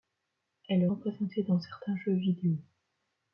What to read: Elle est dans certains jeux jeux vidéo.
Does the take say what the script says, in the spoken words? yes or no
no